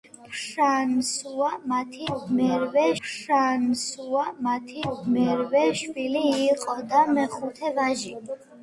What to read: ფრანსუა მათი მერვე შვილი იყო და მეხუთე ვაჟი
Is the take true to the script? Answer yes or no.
no